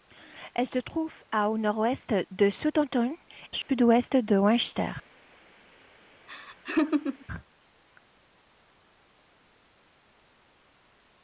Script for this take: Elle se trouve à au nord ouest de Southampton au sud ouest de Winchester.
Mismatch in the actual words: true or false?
false